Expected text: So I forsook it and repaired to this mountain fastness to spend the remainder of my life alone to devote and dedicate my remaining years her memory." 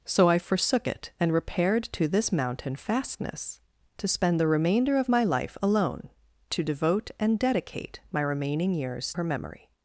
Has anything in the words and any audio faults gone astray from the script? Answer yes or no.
no